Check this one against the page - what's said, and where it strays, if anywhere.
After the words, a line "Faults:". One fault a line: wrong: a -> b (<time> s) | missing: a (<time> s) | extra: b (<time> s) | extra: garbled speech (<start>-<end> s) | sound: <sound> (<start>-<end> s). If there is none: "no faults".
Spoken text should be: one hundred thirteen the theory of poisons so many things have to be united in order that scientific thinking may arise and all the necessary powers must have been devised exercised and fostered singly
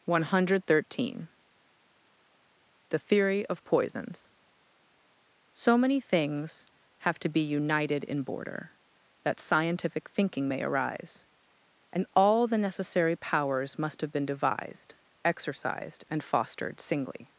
one hundred thirteen the theory of poisons so many things have to be united in border that scientific thinking may arise and all the necessary powers must have been devised exercised and fostered singly
Faults:
wrong: order -> border (8.2 s)